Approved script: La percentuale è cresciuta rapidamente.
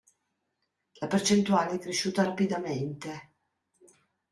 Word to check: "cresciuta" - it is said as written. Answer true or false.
true